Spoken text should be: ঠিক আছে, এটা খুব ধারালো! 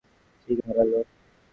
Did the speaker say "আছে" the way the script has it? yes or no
no